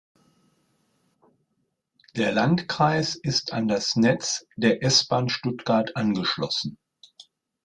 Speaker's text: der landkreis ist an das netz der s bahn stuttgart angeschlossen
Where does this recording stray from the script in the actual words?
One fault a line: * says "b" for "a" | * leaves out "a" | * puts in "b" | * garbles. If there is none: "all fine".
all fine